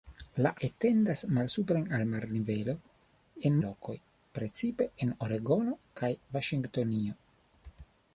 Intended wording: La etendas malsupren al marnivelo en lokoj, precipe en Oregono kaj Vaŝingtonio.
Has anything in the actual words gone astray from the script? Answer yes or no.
no